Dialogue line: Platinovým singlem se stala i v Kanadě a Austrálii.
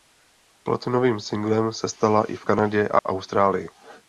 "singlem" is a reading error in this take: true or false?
false